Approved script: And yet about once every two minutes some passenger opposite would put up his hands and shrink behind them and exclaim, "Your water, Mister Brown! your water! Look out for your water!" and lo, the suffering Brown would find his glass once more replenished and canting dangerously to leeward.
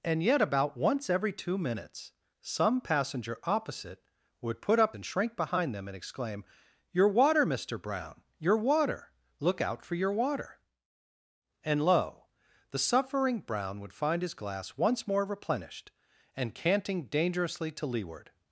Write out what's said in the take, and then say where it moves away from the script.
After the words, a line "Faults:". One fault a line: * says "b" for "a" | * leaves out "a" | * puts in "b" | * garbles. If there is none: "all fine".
And yet about once every two minutes some passenger opposite would put up and shrink behind them and exclaim, "Your water, Mister Brown! your water! Look out for your water!" and lo, the suffering Brown would find his glass once more replenished and canting dangerously to leeward.
Faults:
* leaves out "his hands"